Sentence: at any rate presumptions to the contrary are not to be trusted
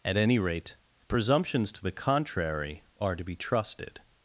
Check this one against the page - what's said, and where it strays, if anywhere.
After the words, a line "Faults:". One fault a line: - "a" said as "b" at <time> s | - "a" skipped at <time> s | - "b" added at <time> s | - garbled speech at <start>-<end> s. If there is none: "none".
at any rate presumptions to the contrary are to be trusted
Faults:
- "not" skipped at 3.2 s